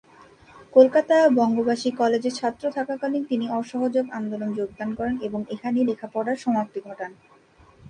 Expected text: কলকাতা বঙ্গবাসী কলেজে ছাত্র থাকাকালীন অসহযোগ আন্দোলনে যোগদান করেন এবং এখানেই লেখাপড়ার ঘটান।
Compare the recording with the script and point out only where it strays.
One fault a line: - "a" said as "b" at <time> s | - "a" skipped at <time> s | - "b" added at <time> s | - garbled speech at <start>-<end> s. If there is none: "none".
- "তিনি" added at 3.2 s
- "সমাপ্তি" added at 6.4 s